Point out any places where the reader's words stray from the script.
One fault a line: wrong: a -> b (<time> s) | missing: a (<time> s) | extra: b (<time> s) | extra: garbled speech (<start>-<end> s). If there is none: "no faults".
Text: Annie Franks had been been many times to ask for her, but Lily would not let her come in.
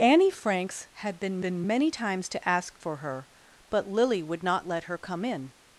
no faults